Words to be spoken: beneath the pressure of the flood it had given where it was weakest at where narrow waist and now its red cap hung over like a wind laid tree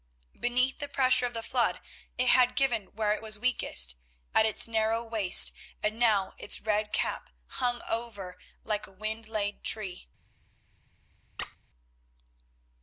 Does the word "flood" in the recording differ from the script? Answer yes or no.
no